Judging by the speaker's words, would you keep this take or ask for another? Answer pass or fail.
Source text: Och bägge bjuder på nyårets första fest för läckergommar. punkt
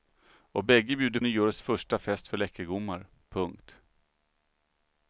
fail